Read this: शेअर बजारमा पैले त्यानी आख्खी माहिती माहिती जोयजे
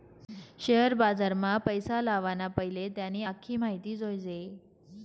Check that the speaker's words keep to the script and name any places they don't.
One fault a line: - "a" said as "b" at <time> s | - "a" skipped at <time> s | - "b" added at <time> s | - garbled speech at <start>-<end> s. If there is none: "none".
- "पैसा लावाना" added at 1.6 s
- "माहिती" skipped at 4.0 s